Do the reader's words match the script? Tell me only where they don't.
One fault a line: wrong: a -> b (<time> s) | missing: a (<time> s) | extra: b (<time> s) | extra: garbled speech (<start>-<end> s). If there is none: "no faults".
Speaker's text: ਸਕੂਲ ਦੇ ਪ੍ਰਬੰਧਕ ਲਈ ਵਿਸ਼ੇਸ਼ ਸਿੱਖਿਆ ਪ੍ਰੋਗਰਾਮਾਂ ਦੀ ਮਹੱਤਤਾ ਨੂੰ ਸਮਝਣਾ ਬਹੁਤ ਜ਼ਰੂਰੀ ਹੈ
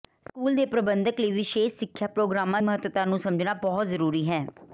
missing: ਦੀ (2.6 s)